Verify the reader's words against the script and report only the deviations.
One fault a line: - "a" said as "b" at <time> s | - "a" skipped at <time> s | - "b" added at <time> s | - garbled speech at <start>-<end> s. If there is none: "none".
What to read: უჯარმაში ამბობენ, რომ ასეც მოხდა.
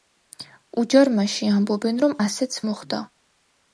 none